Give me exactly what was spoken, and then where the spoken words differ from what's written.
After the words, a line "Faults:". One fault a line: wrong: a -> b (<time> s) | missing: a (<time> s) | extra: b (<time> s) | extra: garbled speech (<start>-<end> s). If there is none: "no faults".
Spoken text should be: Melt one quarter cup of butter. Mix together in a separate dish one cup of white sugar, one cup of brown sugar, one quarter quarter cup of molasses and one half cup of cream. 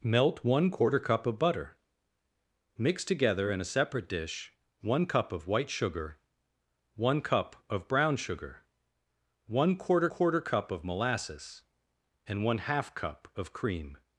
Melt one quarter cup of butter. Mix together in a separate dish one cup of white sugar, one cup of brown sugar, one quarter quarter cup of molasses and one half cup of cream.
Faults:
no faults